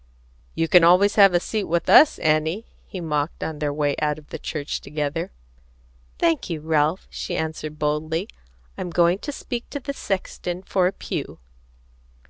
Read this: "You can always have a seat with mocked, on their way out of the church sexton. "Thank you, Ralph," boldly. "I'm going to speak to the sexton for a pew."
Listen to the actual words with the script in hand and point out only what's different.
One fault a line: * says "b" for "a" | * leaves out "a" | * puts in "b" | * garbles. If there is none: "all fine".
* puts in "us Annie he"
* says "together" for "sexton"
* puts in "she answered"